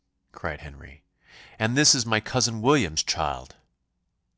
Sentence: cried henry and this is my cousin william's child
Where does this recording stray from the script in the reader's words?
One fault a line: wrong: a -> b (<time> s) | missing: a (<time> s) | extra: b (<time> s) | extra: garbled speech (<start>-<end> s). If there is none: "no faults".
no faults